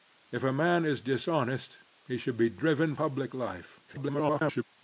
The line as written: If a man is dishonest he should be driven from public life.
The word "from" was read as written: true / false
false